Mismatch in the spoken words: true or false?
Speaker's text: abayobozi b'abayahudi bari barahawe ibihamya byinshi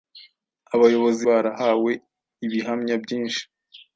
true